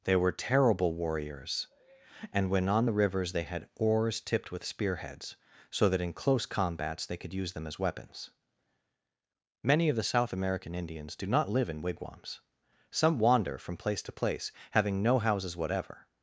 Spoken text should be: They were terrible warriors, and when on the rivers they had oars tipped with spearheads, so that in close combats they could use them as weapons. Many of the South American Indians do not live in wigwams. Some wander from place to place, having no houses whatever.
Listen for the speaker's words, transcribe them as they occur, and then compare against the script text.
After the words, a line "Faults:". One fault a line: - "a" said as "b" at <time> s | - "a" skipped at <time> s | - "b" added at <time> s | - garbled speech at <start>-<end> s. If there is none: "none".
They were terrible warriors, and when on the rivers they had oars tipped with spearheads, so that in close combats they could use them as weapons. Many of the South American Indians do not live in wigwams. Some wander from place to place, having no houses whatever.
Faults:
none